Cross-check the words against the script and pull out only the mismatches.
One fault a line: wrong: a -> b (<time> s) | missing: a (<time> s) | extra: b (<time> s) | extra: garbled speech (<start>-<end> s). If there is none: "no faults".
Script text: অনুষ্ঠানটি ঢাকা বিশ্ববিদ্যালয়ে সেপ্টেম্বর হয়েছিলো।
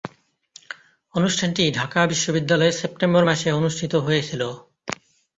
extra: মাসে অনুষ্ঠিত (3.2 s)